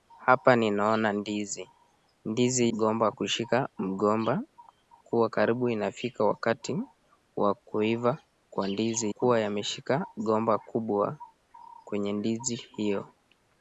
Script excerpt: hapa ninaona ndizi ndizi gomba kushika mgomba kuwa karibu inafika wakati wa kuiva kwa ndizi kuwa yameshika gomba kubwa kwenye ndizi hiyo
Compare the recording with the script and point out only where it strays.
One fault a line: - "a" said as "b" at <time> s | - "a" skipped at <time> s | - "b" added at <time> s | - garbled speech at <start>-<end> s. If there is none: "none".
none